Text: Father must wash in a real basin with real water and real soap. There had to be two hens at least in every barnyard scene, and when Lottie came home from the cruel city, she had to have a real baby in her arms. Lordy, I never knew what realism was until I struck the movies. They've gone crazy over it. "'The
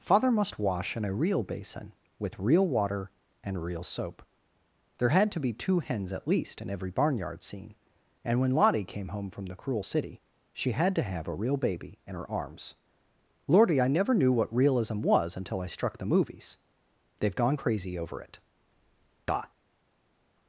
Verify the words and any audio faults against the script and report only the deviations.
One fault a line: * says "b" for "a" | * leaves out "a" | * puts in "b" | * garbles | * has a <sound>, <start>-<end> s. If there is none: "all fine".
all fine